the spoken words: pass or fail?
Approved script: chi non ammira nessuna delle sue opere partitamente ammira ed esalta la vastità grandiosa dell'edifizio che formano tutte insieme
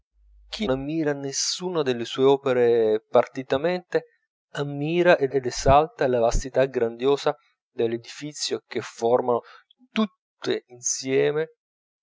fail